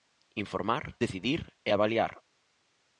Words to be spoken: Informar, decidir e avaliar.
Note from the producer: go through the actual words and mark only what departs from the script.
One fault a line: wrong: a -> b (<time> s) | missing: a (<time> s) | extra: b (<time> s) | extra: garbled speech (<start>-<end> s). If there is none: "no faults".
no faults